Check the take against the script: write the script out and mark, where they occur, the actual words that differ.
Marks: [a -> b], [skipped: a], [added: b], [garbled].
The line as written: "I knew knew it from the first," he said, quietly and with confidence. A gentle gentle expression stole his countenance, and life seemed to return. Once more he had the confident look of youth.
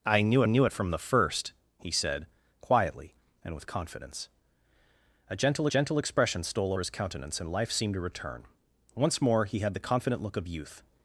"I knew knew it from the first," he said, quietly and with confidence. A gentle gentle expression stole his countenance, and life seemed to return. Once more he had the confident look of youth.